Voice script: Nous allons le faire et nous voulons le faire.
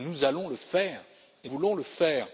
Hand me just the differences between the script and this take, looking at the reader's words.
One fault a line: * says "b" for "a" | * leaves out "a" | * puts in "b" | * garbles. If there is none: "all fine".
* leaves out "nous"